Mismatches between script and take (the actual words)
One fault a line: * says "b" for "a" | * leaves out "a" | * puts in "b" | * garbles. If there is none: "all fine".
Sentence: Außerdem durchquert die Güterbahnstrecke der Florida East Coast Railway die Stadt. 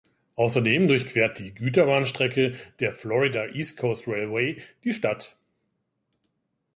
all fine